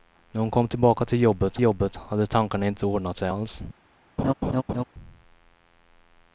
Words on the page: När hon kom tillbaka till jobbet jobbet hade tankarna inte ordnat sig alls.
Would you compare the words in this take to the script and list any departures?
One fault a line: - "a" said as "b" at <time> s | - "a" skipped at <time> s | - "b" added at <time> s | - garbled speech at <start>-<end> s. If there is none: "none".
none